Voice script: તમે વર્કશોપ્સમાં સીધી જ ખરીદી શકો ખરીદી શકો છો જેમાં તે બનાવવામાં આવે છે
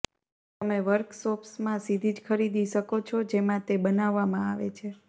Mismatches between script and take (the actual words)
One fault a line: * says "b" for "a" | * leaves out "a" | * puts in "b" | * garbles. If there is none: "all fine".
* leaves out "ખરીદી શકો"